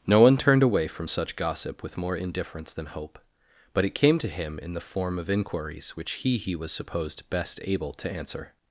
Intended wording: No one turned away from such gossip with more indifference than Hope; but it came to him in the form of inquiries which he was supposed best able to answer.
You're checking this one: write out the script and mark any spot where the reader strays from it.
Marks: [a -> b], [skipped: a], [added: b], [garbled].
No one turned away from such gossip with more indifference than Hope; but it came to him in the form of inquiries which he [added: he] was supposed best able to answer.